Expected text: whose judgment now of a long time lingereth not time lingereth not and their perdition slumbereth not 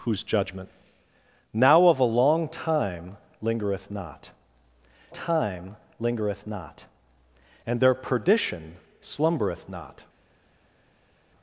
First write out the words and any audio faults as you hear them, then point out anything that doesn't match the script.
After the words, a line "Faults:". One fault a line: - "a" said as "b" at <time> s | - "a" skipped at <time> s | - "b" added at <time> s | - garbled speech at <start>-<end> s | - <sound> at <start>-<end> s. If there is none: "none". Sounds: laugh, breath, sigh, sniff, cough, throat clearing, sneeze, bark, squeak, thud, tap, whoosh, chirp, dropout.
whose judgment now of a long time lingereth not time lingereth not and their perdition slumbereth not
Faults:
none